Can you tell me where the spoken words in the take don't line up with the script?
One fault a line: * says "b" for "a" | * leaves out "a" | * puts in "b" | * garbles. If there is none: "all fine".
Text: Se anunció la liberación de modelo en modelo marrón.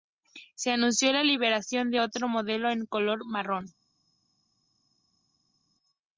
* puts in "otro"
* says "color" for "modelo"